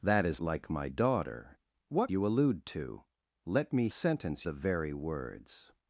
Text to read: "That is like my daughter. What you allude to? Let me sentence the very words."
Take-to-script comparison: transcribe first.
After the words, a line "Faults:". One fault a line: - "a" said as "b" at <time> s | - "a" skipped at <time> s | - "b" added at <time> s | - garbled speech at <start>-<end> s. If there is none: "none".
"That is like my daughter. What you allude to? Let me sentence the very words."
Faults:
none